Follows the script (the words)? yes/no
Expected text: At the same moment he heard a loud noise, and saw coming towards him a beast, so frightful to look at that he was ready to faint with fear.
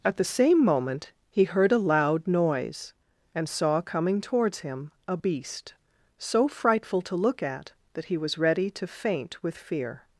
yes